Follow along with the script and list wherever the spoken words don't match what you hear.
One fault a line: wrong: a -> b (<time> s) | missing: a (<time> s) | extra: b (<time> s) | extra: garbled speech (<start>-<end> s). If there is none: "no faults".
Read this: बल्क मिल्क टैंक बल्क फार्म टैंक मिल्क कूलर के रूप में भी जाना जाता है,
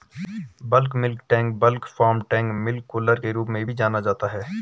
no faults